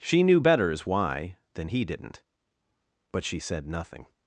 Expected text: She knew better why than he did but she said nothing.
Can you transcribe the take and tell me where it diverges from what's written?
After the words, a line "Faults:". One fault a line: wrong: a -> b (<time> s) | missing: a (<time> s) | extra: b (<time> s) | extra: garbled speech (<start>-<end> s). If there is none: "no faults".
She knew betters why than he didn't but she said nothing.
Faults:
wrong: better -> betters (0.4 s)
wrong: did -> didn't (1.8 s)